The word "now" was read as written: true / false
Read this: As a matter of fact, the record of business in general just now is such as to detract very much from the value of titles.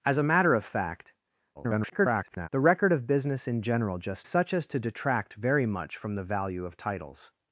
false